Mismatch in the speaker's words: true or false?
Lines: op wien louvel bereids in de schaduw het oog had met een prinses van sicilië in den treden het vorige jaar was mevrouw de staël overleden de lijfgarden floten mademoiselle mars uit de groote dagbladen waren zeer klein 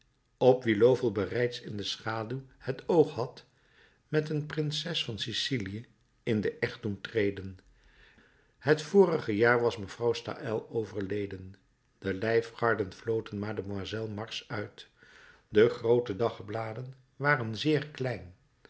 true